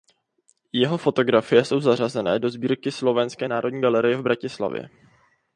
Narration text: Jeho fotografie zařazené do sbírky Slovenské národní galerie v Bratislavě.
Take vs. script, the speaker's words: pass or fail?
fail